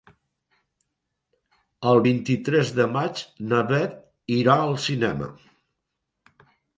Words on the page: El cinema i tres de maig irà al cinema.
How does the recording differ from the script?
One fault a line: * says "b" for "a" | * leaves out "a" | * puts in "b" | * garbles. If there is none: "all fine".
* says "vint" for "cinema"
* puts in "na Beth"